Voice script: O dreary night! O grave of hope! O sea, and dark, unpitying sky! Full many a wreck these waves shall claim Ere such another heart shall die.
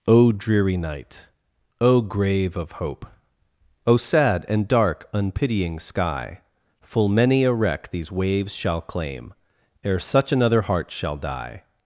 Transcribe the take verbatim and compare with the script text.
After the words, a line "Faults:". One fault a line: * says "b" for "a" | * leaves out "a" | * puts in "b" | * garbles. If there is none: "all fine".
O dreary night! O grave of hope! O sad, and dark, unpitying sky! Full many a wreck these waves shall claim Ere such another heart shall die.
Faults:
* says "sad" for "sea"